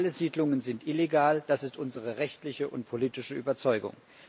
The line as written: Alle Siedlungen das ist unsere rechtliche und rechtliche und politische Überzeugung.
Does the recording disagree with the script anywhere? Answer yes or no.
yes